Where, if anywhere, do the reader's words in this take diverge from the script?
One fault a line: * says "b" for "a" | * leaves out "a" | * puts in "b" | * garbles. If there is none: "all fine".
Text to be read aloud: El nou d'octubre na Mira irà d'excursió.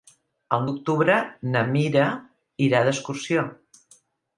* leaves out "nou"